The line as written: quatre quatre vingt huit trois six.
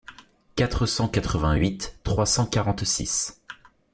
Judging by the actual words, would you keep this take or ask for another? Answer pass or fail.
fail